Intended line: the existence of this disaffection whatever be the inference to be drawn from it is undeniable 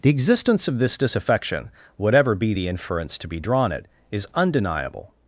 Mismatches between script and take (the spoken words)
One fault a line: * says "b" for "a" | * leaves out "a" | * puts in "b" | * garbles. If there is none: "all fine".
* leaves out "from"